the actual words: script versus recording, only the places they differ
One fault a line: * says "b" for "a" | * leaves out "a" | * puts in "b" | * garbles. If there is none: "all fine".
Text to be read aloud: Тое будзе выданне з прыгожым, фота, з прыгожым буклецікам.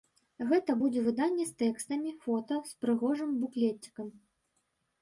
* says "Гэта" for "Тое"
* says "тэкстамі" for "прыгожым"